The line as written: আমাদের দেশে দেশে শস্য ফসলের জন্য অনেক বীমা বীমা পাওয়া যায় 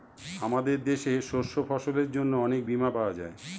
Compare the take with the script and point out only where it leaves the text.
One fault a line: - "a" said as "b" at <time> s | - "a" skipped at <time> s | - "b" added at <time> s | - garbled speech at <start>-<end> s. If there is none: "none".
- "দেশে" skipped at 1.1 s
- "বীমা" skipped at 2.9 s